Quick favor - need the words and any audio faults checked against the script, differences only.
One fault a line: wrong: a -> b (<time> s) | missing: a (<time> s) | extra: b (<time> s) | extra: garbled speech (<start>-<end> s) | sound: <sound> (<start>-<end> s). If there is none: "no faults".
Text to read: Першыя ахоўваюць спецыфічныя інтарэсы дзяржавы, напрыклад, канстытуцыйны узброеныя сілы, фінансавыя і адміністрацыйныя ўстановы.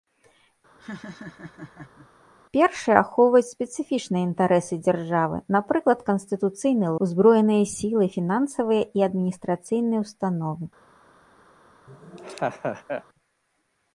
sound: laugh (0.8-2.1 s)
sound: laugh (11.9-13.0 s)